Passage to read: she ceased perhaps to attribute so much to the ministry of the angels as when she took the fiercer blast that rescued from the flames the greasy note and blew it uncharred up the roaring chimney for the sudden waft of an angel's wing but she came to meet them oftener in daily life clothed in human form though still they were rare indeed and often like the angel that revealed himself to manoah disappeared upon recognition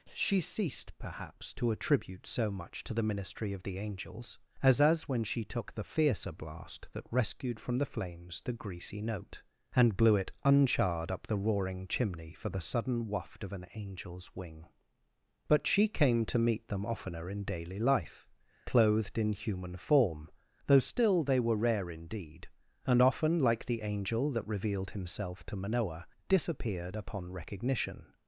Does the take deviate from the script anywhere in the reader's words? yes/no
yes